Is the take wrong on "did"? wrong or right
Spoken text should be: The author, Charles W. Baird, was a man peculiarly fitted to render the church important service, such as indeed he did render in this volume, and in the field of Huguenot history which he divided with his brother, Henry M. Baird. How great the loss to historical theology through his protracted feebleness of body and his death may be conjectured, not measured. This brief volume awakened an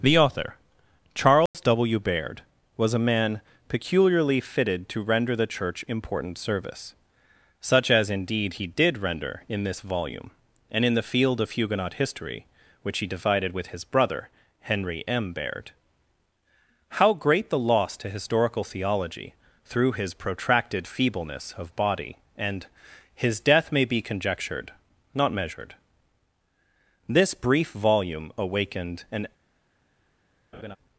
right